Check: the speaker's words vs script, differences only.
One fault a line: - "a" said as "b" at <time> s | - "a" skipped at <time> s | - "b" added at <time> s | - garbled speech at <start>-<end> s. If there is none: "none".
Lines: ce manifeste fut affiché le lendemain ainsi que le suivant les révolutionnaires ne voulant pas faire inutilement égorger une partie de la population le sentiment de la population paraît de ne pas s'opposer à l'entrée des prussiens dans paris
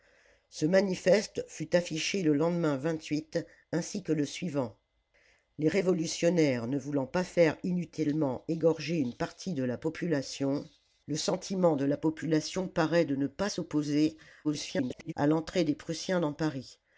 - garbled speech at 14.4-15.1 s